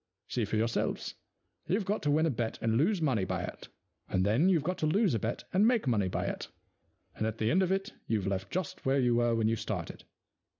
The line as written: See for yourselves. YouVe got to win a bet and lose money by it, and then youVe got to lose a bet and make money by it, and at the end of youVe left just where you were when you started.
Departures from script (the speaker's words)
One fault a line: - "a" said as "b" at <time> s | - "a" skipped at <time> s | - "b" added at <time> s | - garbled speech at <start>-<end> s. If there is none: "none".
- "it" added at 7.7 s